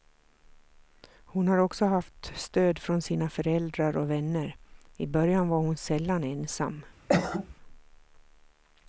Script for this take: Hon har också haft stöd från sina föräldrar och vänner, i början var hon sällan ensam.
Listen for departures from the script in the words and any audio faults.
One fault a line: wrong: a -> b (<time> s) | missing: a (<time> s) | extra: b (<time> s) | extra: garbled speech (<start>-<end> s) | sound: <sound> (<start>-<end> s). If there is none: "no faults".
sound: cough (7.1-7.5 s)